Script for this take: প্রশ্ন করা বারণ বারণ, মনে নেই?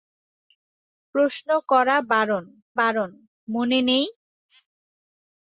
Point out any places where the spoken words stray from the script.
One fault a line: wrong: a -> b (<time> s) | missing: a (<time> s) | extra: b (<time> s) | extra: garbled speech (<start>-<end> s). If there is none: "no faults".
no faults